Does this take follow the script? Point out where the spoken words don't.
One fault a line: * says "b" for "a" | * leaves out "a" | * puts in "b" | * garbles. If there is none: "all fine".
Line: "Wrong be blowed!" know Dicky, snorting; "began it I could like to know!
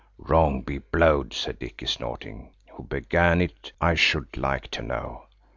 * says "said" for "know"
* puts in "who"
* says "should" for "could"